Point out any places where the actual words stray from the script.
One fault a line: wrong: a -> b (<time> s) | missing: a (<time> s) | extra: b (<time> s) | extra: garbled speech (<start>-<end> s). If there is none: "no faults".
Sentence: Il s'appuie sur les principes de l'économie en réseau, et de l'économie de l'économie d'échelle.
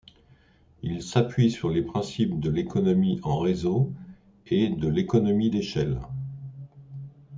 missing: de l'économie (5.5 s)